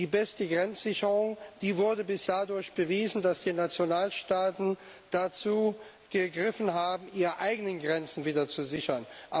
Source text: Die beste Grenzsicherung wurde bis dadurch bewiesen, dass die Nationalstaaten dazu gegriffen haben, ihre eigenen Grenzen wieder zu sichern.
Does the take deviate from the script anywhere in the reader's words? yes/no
no